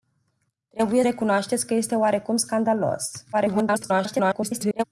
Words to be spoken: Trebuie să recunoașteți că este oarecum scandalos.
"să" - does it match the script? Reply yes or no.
no